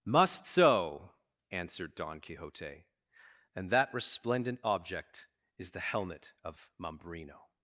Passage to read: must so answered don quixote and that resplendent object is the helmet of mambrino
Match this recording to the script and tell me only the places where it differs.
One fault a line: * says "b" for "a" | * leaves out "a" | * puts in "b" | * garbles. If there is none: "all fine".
all fine